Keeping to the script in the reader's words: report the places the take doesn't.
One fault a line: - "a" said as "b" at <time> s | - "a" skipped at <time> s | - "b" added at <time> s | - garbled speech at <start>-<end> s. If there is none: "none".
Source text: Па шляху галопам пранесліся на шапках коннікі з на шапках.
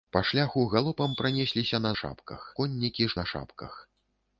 none